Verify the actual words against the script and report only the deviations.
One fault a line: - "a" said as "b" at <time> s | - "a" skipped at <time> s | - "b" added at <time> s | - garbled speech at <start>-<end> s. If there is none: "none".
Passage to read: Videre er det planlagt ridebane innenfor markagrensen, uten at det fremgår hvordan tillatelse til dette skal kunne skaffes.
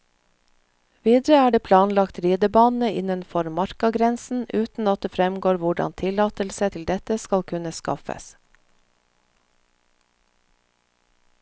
none